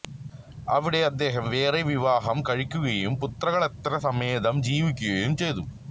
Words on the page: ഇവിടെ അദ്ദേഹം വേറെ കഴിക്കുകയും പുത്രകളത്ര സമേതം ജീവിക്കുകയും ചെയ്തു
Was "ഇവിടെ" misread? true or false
true